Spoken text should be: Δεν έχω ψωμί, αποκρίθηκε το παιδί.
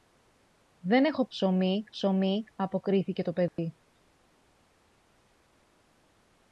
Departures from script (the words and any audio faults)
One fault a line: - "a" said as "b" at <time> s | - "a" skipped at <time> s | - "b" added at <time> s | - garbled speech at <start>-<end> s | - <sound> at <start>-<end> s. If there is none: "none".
- "ψωμί" added at 1.9 s
- dropout at 3.5-3.6 s